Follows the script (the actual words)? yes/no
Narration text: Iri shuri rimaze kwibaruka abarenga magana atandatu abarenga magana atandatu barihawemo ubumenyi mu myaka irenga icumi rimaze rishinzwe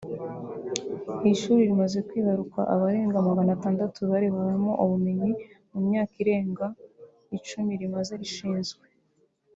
no